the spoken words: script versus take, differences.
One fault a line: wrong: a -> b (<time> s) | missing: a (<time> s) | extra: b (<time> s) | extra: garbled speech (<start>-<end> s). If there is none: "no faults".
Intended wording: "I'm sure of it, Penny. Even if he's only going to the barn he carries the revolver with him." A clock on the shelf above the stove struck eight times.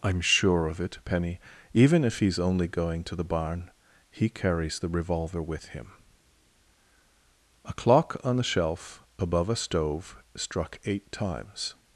wrong: the -> a (9.5 s)